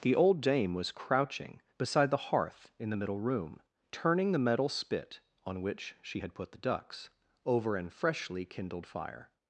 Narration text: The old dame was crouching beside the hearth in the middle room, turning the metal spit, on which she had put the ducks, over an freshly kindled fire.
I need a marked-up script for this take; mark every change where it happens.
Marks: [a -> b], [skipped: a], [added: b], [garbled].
The old dame was crouching beside the hearth in the middle room, turning the metal spit, on which she had put the ducks, over an freshly kindled fire.